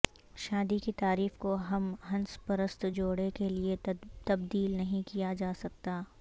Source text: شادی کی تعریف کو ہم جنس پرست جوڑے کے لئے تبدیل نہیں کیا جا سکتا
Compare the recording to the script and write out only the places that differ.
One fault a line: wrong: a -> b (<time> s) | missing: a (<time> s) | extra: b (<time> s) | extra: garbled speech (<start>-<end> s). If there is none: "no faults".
no faults